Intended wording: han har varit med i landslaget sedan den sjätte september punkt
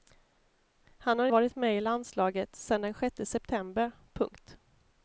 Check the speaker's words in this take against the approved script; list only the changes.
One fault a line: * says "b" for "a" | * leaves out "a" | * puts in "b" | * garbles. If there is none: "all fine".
all fine